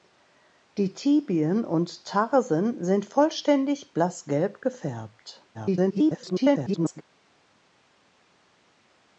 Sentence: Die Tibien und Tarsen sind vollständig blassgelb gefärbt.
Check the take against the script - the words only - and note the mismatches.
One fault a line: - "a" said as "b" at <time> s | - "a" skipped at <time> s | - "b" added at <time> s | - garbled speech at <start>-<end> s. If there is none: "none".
- garbled speech at 5.5-7.0 s